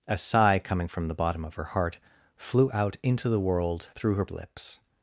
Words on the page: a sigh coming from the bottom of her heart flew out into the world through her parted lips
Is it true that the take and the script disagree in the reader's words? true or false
true